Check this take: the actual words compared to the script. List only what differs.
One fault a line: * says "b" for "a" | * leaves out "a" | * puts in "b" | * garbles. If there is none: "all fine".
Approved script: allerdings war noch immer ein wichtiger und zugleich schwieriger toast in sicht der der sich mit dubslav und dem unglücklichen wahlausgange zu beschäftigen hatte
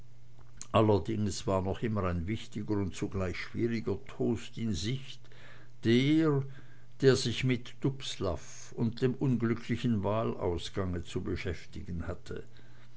all fine